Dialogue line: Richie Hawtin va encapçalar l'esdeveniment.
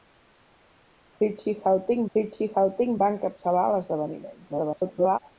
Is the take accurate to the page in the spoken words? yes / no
no